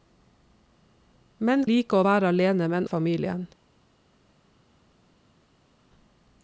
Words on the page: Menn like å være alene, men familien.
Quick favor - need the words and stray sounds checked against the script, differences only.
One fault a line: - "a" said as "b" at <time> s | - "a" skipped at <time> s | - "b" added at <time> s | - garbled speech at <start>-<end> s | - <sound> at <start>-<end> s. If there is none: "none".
none